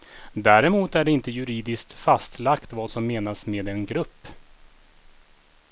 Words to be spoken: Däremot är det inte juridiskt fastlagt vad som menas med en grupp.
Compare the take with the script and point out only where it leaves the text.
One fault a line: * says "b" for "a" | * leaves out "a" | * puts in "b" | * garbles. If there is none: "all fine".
all fine